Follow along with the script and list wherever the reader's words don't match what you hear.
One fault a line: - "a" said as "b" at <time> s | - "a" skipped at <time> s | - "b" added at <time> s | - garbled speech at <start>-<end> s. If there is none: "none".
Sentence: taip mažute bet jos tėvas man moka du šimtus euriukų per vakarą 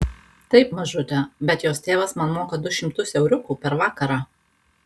none